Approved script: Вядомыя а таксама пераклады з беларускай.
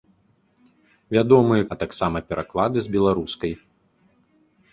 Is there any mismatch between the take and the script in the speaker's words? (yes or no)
no